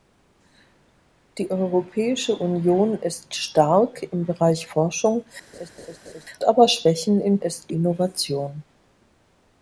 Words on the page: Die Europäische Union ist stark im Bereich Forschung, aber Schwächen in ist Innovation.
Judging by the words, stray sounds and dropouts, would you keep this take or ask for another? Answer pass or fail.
fail